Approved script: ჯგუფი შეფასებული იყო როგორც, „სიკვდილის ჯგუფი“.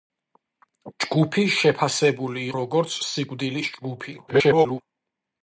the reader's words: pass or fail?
fail